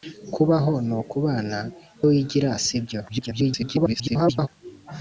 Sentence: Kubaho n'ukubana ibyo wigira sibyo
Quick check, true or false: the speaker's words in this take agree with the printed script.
false